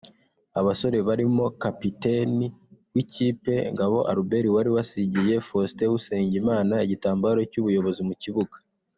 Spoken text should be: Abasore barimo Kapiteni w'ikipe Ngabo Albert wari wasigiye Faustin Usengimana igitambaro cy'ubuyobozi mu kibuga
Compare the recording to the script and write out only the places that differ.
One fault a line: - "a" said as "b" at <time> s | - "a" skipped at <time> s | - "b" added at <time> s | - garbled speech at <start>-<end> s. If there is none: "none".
none